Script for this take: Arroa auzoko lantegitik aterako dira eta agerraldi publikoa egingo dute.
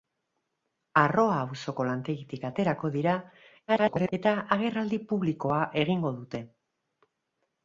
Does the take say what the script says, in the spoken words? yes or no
no